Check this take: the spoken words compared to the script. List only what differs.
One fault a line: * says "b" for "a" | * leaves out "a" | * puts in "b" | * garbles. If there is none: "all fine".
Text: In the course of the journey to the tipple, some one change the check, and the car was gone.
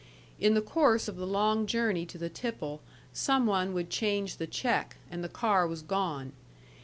* puts in "long"
* puts in "would"